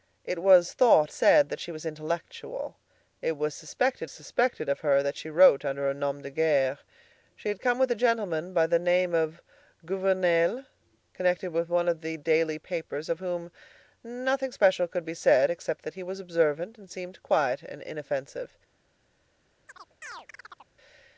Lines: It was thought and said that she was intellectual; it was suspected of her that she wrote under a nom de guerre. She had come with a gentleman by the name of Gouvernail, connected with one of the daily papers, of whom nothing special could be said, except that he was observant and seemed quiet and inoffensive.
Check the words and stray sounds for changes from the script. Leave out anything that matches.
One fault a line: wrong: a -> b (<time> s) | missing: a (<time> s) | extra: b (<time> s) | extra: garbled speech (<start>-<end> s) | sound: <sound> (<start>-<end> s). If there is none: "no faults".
missing: and (1.1 s)
extra: suspected (4.1 s)
sound: chirp (19.7-20.7 s)